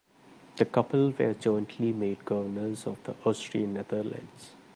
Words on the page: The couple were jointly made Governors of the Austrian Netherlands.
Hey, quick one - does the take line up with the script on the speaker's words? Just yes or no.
yes